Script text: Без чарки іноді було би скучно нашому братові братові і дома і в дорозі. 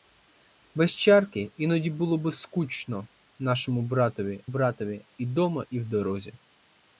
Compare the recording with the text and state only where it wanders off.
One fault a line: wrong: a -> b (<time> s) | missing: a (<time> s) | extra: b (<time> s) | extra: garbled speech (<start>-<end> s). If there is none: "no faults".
no faults